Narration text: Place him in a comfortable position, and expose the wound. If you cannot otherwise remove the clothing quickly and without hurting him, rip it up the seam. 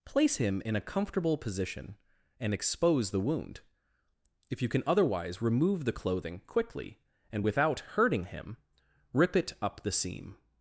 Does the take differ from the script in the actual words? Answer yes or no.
yes